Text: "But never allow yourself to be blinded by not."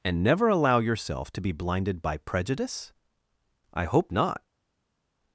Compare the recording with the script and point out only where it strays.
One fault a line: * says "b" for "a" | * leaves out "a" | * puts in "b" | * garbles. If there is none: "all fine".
* says "And" for "But"
* puts in "prejudice I hope"